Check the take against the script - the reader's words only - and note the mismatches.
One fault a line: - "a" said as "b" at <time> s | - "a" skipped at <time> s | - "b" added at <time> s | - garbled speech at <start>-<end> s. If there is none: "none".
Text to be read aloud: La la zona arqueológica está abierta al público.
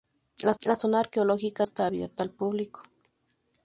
none